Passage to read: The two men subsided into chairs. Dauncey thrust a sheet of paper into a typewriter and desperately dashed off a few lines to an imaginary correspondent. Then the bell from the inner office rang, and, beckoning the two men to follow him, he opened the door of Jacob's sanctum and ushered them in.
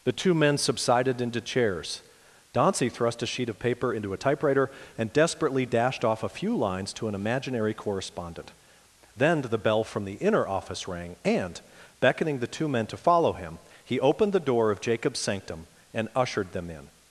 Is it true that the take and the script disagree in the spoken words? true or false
false